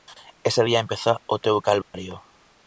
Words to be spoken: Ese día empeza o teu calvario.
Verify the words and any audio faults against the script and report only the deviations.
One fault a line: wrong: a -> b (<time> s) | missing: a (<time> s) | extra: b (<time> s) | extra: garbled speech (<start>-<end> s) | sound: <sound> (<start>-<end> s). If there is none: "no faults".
sound: dropout (1.8-1.9 s)